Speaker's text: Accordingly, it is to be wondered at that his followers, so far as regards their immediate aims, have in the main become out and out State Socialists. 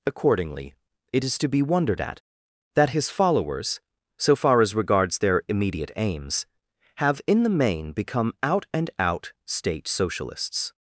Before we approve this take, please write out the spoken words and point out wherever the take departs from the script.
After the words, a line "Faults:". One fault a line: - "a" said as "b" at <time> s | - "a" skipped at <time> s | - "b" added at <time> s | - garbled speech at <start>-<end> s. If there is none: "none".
Accordingly, it is to be wondered at that his followers, so far as regards their immediate aims, have in the main become out and out State Socialists.
Faults:
none